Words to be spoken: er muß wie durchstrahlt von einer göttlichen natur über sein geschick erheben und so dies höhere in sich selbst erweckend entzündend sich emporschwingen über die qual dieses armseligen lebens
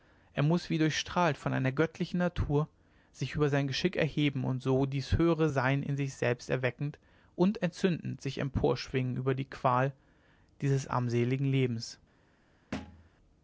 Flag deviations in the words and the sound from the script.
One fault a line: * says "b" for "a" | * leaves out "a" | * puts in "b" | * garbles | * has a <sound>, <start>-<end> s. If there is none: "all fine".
* puts in "sich"
* puts in "sein"
* puts in "und"
* has a thud, 12.7-13.1 s